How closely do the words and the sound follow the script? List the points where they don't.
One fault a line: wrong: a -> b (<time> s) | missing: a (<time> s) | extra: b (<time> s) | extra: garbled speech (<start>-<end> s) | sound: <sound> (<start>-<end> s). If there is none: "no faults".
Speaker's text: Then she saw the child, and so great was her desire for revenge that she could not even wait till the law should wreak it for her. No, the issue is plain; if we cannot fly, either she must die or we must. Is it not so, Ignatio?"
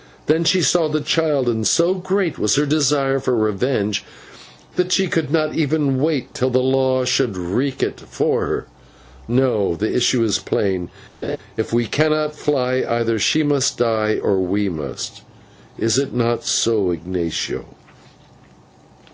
sound: laugh (11.2-11.4 s)